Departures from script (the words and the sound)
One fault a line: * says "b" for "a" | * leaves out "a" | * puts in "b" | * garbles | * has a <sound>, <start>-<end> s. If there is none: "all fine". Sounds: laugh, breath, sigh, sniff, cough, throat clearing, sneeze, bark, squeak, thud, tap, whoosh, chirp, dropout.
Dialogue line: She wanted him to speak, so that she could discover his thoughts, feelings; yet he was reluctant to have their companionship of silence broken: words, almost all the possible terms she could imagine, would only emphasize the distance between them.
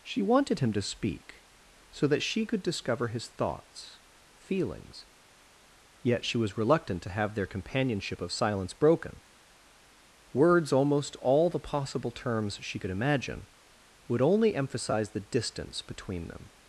* says "she" for "he"